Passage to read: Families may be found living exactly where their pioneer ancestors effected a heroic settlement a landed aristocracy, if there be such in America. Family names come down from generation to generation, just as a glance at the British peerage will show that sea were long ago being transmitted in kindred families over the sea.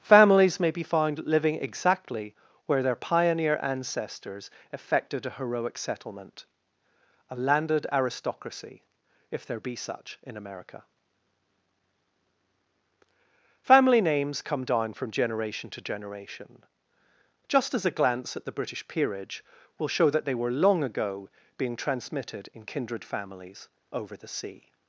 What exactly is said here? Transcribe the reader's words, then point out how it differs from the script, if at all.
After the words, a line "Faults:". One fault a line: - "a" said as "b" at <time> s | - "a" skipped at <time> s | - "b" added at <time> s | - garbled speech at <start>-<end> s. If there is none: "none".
Families may be found living exactly where their pioneer ancestors effected a heroic settlement a landed aristocracy, if there be such in America. Family names come down from generation to generation, just as a glance at the British peerage will show that they were long ago being transmitted in kindred families over the sea.
Faults:
- "sea" said as "they" at 20.2 s